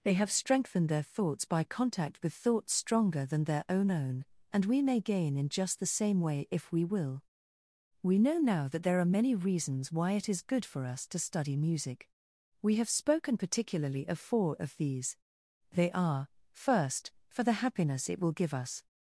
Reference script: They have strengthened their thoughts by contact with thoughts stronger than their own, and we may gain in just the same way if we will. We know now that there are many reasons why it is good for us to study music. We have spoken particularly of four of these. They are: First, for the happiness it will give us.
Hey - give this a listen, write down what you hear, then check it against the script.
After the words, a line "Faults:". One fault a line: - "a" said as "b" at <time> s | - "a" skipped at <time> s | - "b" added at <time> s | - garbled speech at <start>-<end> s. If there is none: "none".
They have strengthened their thoughts by contact with thoughts stronger than their own own, and we may gain in just the same way if we will. We know now that there are many reasons why it is good for us to study music. We have spoken particularly of four of these. They are: First, for the happiness it will give us.
Faults:
- "own" added at 3.9 s